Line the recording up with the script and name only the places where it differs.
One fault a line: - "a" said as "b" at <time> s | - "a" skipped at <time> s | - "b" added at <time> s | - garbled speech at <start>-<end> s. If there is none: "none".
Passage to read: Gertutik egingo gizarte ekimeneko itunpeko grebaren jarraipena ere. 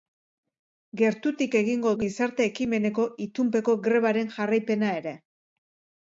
none